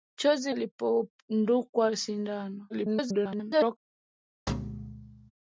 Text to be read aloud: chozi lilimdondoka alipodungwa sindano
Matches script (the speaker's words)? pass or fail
fail